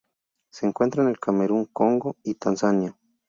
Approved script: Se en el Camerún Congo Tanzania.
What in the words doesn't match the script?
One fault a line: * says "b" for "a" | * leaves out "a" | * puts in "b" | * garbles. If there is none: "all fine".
* puts in "encuentra"
* puts in "y"